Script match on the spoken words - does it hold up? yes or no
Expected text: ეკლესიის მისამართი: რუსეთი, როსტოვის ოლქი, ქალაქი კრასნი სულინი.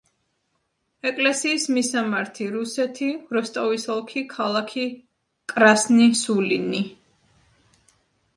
yes